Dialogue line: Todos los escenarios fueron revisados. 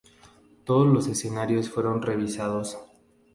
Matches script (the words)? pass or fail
pass